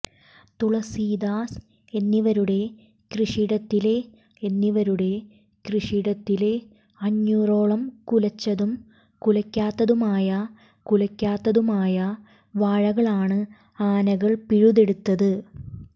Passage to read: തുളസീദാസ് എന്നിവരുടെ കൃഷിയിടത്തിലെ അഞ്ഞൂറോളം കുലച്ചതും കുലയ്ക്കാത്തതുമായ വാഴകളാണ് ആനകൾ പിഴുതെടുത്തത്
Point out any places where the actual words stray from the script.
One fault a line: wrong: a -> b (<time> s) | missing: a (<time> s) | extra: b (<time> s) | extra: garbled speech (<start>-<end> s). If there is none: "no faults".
extra: എന്നിവരുടെ കൃഷിയിടത്തിലെ (4.4 s)
extra: കുലയ്ക്കാത്തതുമായ (10.9 s)